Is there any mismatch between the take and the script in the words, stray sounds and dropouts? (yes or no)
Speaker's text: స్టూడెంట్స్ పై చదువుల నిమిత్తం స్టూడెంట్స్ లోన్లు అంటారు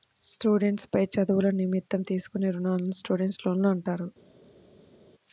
yes